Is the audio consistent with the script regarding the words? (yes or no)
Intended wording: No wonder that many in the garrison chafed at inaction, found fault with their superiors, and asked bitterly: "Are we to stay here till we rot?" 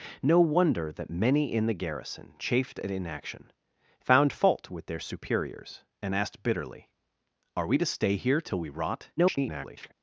no